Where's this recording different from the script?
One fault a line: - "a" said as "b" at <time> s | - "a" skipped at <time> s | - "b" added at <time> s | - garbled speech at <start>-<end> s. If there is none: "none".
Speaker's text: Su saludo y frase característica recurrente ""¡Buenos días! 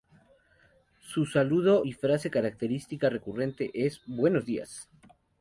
- "es" added at 3.7 s